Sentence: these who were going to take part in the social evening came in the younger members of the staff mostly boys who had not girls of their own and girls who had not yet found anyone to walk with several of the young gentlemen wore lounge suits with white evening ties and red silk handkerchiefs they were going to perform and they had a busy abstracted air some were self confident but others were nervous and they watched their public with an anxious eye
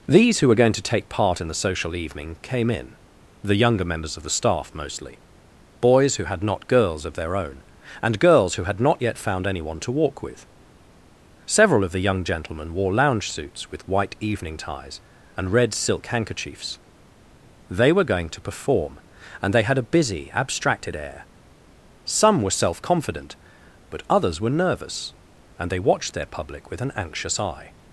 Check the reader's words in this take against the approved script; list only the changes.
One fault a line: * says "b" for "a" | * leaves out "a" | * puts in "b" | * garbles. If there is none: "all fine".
all fine